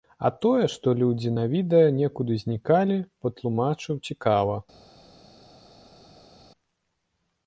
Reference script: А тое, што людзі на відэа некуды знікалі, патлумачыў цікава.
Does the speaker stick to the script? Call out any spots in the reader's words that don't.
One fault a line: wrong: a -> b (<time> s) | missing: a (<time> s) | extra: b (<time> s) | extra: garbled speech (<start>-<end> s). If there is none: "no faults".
no faults